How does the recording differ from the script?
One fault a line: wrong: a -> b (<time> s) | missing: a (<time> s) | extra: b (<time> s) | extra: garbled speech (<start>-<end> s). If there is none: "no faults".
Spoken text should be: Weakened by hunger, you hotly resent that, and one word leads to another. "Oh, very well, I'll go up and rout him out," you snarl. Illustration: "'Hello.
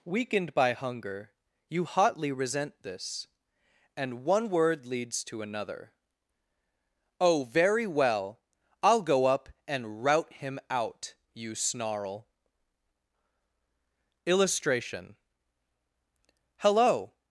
wrong: that -> this (2.8 s)